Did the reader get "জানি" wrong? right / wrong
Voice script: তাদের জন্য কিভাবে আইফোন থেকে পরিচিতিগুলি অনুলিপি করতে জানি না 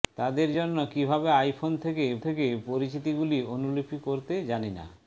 right